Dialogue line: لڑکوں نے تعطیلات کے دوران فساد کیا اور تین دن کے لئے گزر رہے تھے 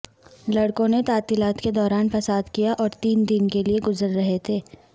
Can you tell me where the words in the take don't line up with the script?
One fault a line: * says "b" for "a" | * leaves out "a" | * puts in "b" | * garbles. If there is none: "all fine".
all fine